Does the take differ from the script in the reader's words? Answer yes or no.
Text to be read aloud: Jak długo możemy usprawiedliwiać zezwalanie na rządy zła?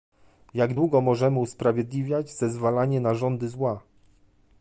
no